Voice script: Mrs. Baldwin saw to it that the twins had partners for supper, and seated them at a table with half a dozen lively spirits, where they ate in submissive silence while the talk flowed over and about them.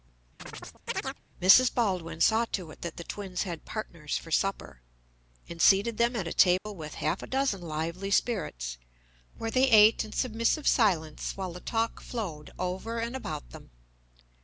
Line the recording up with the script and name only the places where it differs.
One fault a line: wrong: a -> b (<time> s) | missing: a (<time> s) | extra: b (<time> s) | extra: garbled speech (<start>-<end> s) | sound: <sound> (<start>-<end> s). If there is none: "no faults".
sound: chirp (0.4-1.2 s)
sound: dropout (6.6-6.7 s)